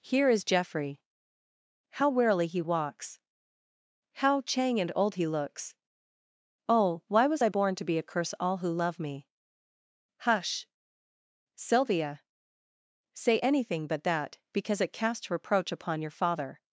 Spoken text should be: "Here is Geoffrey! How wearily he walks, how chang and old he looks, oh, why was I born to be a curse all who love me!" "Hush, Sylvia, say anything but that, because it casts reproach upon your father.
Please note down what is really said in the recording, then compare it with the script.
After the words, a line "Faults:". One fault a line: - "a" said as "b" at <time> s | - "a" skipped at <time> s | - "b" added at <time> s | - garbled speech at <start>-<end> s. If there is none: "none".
"Here is Geoffrey! How wearily he walks, how chang and old he looks, oh, why was I born to be a curse all who love me!" "Hush, Sylvia, say anything but that, because it casts reproach upon your father.
Faults:
none